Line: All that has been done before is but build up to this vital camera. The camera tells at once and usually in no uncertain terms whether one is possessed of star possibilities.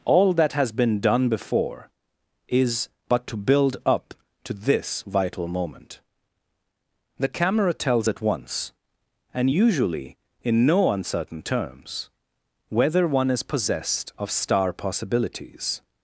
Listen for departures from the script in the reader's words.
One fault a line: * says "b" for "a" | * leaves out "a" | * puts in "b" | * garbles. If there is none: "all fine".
* puts in "to"
* says "moment" for "camera"